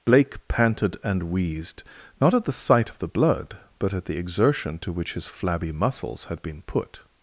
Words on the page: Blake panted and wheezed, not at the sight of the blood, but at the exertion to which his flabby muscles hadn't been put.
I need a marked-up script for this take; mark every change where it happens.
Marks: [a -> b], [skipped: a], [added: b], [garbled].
Blake panted and wheezed, not at the sight of the blood, but at the exertion to which his flabby muscles [hadn't -> had] been put.